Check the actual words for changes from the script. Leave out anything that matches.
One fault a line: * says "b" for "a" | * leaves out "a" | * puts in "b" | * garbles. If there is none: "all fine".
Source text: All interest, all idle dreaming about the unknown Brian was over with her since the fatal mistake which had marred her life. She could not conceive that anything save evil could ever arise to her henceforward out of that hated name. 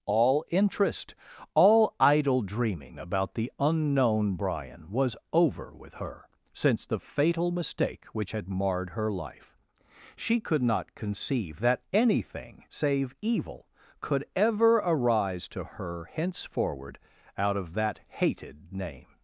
all fine